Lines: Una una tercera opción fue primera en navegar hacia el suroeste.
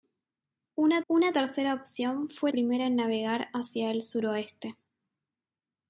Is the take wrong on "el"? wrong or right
right